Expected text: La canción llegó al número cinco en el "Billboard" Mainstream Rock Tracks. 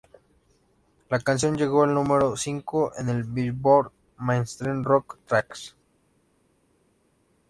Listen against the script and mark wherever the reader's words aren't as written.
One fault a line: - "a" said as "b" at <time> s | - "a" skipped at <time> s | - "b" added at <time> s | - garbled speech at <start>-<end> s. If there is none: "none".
none